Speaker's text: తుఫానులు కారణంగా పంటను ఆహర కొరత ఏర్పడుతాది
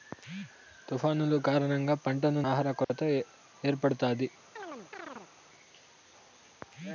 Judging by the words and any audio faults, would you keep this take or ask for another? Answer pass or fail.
fail